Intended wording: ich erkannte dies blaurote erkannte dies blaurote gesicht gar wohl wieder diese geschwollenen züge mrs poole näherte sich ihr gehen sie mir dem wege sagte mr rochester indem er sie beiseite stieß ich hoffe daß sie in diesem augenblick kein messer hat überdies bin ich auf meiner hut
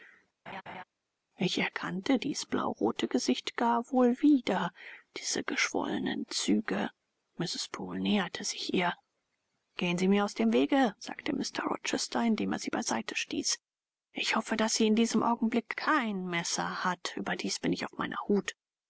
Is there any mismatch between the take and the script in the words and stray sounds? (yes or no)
yes